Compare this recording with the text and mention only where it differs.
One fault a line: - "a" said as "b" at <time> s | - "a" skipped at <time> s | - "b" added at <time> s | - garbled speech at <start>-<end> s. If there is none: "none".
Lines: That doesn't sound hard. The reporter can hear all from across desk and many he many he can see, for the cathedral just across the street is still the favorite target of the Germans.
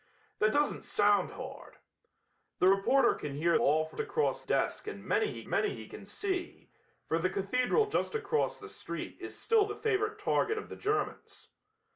none